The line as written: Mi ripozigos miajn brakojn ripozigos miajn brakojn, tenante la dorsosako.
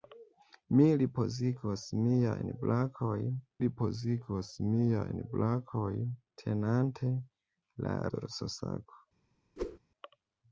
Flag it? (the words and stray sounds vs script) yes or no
yes